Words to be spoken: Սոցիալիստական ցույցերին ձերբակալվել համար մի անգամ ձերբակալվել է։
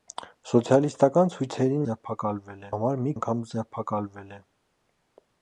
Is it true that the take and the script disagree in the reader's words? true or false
false